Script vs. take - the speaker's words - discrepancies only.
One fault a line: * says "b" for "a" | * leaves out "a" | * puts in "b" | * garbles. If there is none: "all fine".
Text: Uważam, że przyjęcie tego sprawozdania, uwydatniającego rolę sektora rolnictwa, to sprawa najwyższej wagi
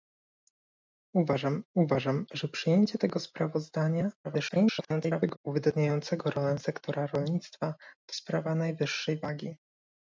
* puts in "uważam"
* garbles